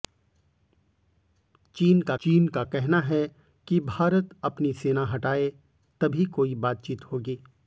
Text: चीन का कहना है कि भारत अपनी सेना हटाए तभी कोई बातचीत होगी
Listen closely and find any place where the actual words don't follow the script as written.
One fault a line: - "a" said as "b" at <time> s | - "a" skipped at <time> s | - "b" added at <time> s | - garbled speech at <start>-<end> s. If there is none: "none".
- "चीन का" added at 2.2 s